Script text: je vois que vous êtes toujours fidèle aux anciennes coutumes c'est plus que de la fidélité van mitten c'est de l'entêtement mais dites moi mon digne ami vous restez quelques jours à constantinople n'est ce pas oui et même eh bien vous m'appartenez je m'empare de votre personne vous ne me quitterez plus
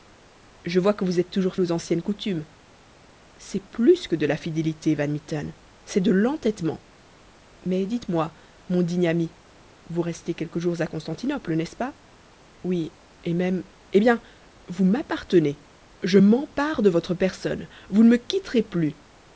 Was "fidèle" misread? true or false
true